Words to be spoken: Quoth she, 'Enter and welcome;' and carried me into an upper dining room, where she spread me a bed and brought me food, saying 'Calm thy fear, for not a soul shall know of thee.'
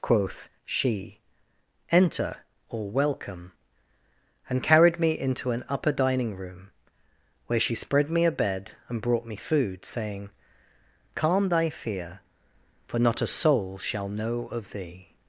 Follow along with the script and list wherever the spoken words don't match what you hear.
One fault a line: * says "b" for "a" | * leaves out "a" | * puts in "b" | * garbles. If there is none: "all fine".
* says "or" for "and"